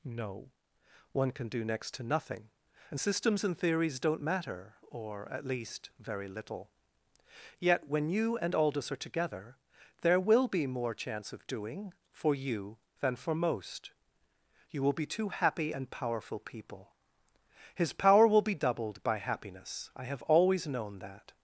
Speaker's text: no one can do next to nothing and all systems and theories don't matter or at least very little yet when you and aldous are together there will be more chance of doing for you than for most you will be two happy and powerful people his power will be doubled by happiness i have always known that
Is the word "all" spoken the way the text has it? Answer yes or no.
no